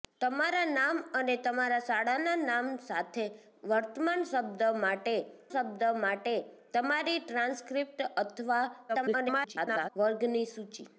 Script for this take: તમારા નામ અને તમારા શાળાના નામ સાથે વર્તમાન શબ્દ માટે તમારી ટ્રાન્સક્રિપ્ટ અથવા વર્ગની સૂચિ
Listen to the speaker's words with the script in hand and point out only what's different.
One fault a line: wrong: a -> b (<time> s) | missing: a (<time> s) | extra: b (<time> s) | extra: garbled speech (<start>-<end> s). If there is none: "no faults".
extra: શબ્દ માટે (5.5 s)
extra: garbled speech (8.9-9.9 s)